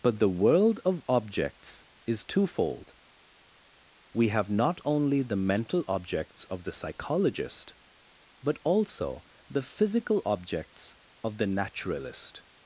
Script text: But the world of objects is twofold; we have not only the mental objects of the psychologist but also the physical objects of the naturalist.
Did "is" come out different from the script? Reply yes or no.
no